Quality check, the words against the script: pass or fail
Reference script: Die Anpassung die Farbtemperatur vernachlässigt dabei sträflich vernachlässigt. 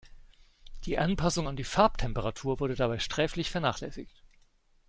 fail